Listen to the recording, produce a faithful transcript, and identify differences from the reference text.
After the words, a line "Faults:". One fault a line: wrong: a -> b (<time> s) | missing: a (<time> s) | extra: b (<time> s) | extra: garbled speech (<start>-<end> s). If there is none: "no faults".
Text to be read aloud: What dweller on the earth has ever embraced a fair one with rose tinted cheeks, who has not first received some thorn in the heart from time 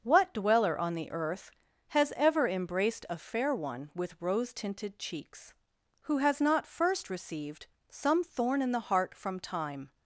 What dweller on the earth has ever embraced a fair one with rose tinted cheeks, who has not first received some thorn in the heart from time
Faults:
no faults